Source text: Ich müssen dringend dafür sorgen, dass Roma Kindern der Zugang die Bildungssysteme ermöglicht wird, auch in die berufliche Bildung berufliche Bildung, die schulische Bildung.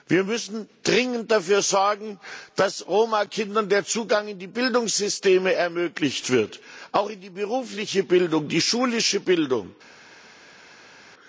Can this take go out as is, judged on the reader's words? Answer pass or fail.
fail